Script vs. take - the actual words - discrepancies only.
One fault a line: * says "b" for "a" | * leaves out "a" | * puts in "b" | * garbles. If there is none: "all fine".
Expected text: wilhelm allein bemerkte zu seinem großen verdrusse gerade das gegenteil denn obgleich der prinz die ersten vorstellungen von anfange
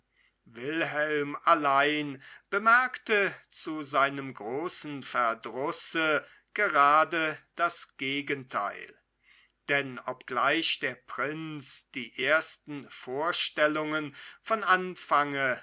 all fine